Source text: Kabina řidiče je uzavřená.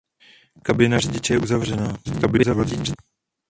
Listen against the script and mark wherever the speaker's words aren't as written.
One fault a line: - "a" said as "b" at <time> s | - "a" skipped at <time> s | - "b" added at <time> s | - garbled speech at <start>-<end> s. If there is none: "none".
- garbled speech at 2.0-3.0 s